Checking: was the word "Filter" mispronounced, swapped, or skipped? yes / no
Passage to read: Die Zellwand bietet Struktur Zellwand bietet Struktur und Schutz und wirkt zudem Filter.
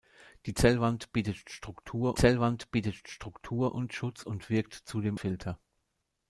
no